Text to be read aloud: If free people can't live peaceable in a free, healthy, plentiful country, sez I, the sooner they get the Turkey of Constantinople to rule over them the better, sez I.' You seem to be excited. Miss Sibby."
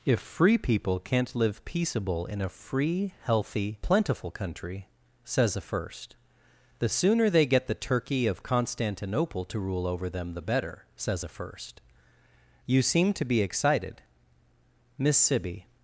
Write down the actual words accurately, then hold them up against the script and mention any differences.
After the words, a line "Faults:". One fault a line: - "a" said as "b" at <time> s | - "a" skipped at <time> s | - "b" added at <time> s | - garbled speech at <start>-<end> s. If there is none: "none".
If free people can't live peaceable in a free, healthy, plentiful country, says a first, the sooner they get the Turkey of Constantinople to rule over them the better, says a first.' You seem to be excited. Miss Sibby."
Faults:
- "sez I" said as "says a first" at 5.2 s
- "sez I" said as "says a first" at 10.9 s